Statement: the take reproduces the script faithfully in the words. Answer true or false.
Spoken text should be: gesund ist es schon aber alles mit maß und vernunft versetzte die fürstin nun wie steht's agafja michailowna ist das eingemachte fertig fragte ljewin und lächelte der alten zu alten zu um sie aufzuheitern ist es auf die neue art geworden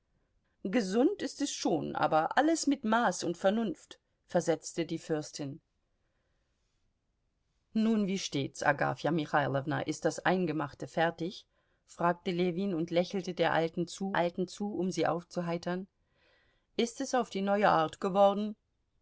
true